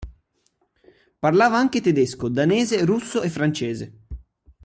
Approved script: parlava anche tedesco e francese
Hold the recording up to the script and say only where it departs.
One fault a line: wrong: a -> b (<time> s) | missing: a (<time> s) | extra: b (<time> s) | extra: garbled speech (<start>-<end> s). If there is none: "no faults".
extra: danese russo (2.3 s)